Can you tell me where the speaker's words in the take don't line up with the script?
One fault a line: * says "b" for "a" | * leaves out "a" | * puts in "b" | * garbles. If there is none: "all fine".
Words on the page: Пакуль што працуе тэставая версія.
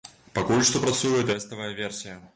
all fine